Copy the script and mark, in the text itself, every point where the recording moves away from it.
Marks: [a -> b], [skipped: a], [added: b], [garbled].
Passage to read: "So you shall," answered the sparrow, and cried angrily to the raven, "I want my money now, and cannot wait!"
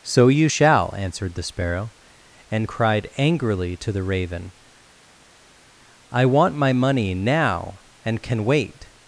"So you shall," answered the sparrow, and cried angrily to the raven, "I want my money now, and [cannot -> can] wait!"